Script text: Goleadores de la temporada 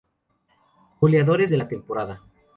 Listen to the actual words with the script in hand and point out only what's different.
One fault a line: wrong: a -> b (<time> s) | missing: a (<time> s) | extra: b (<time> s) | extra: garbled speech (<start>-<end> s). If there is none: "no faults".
no faults